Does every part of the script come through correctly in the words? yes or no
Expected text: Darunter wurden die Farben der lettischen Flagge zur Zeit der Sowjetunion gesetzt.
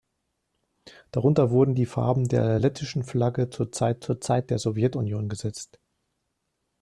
no